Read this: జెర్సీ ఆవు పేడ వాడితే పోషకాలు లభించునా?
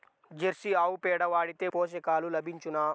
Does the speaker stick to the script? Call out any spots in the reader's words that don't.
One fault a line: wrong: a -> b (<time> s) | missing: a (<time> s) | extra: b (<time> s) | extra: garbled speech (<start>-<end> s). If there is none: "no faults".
no faults